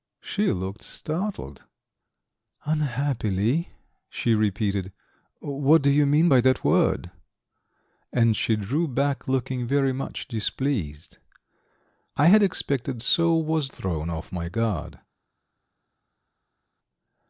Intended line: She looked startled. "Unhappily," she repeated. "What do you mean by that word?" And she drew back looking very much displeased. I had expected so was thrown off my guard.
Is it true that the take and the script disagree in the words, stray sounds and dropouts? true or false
false